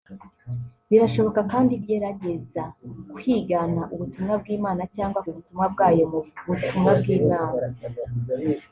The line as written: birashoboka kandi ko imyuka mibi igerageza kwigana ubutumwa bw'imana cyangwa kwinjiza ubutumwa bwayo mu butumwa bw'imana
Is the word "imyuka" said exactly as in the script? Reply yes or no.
no